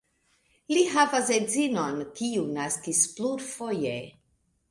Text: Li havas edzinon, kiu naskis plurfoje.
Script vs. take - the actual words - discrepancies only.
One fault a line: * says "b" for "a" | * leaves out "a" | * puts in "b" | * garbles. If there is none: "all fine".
all fine